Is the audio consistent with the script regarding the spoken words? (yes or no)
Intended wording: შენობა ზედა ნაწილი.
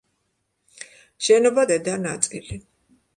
yes